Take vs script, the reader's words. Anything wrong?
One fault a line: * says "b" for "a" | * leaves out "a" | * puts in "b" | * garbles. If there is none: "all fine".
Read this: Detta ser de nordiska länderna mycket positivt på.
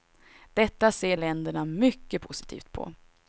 * leaves out "de nordiska"